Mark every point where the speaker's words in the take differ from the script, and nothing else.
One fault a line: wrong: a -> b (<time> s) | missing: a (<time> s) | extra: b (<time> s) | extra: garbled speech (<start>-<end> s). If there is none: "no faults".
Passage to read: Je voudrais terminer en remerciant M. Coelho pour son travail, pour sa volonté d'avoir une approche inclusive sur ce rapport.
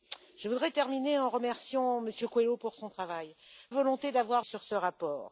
missing: pour sa (3.4 s)
missing: une approche inclusive (4.5 s)